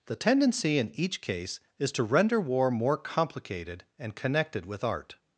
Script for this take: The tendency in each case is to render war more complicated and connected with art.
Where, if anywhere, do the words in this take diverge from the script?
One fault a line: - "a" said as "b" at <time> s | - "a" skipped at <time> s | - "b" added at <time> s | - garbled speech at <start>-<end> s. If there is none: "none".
none